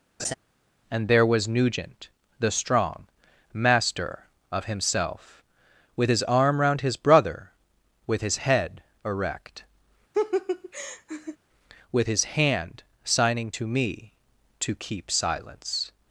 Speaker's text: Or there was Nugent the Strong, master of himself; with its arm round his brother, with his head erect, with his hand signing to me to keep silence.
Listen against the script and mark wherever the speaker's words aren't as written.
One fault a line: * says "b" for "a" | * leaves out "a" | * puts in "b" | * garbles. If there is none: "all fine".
* says "And" for "Or"
* says "his" for "its"